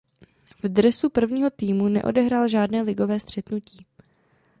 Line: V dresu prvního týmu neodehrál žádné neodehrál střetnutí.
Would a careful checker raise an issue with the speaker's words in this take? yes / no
yes